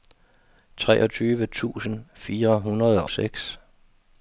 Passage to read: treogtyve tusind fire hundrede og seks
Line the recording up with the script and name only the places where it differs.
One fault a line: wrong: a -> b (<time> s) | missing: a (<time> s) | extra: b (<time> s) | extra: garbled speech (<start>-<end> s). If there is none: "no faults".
missing: og (3.0 s)